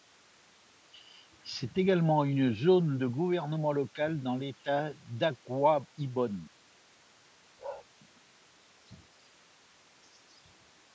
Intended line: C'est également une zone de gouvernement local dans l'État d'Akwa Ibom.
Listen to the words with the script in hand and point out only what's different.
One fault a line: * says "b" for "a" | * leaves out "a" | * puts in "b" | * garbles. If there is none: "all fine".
all fine